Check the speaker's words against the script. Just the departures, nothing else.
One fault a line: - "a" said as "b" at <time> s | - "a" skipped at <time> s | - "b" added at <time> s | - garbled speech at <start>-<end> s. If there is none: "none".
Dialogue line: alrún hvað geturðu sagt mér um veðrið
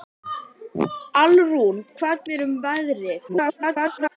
- "geturðu sagt" skipped at 2.2 s
- garbled speech at 3.3-4.2 s